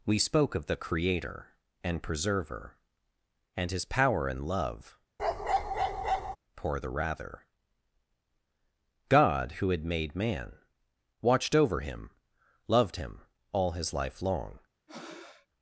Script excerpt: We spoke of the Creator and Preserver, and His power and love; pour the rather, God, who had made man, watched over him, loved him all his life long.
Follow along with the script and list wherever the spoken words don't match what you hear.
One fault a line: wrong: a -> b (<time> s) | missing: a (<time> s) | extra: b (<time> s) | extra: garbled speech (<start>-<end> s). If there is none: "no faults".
no faults